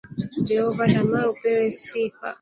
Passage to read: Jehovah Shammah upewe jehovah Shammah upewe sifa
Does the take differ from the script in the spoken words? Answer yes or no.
yes